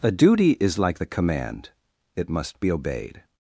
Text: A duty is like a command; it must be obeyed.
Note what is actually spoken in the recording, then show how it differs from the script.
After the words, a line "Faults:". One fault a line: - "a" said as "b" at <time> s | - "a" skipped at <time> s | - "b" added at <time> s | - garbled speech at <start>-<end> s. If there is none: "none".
A duty is like the command; it must be obeyed.
Faults:
- "a" said as "the" at 1.0 s